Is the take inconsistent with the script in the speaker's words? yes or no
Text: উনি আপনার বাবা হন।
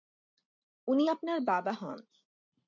no